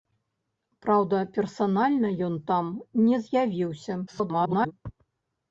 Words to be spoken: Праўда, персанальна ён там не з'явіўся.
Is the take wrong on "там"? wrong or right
right